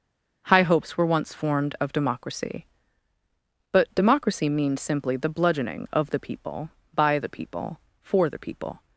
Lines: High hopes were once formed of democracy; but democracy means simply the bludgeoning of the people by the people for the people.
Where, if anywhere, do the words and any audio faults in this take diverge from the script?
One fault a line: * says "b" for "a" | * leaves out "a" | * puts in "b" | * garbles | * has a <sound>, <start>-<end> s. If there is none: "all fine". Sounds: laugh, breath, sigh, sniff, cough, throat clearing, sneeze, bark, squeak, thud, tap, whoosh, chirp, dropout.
all fine